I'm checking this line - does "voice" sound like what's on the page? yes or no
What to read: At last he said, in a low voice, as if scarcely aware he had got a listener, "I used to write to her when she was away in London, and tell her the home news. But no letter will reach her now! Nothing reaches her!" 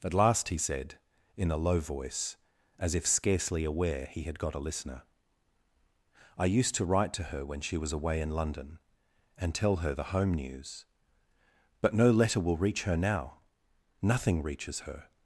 yes